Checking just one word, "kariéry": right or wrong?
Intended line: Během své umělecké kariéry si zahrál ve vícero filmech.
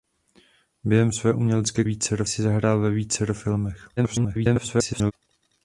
wrong